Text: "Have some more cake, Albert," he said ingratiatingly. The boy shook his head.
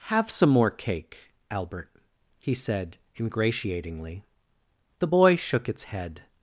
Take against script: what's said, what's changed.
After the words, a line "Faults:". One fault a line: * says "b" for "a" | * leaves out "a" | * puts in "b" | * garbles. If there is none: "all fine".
"Have some more cake, Albert," he said ingratiatingly. The boy shook its head.
Faults:
* says "its" for "his"